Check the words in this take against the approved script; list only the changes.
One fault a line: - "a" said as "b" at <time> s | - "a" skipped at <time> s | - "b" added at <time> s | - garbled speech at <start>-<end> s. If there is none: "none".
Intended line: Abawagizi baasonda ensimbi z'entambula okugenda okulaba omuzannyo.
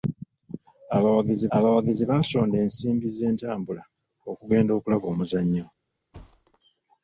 - "abawagizi" added at 1.6 s